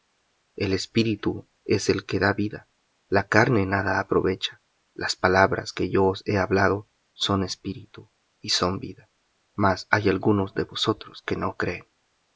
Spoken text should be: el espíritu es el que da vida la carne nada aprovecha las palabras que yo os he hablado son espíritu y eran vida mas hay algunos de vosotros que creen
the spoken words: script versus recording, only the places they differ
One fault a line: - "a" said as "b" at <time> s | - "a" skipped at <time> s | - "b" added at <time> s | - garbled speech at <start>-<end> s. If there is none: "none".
- "eran" said as "son" at 8.5 s
- "no" added at 11.3 s